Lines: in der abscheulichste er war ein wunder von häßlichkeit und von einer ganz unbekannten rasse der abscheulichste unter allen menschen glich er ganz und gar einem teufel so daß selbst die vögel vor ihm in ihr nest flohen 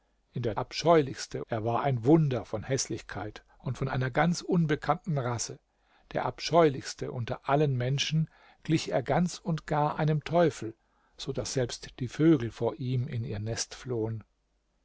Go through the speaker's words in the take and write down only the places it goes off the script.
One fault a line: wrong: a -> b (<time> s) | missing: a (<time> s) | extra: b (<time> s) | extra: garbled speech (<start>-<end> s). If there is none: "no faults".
no faults